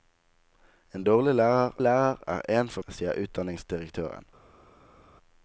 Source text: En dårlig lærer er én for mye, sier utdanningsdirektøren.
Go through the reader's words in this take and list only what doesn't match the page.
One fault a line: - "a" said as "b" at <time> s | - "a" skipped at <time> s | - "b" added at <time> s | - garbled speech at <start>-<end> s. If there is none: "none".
- "lærer" added at 1.8 s
- "mye" skipped at 2.8 s